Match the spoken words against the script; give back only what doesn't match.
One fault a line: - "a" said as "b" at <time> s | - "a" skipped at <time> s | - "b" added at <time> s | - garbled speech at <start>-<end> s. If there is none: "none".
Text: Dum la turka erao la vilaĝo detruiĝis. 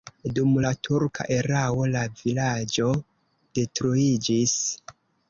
none